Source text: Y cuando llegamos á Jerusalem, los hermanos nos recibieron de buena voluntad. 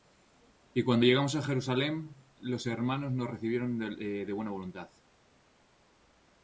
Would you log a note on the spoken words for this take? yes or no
no